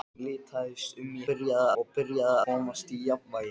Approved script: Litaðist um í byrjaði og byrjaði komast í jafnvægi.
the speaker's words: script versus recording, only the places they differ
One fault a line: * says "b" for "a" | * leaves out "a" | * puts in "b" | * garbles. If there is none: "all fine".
all fine